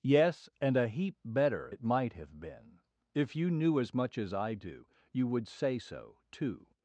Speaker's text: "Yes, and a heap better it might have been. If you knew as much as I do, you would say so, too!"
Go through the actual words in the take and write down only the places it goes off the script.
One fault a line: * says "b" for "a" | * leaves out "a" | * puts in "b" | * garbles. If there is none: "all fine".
all fine